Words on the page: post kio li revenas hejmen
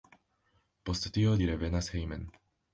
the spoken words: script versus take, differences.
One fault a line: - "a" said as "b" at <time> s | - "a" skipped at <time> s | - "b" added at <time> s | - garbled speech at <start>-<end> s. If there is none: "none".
- "kio" said as "tio" at 1.2 s